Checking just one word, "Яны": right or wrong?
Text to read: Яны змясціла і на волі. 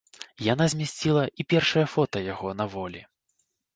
wrong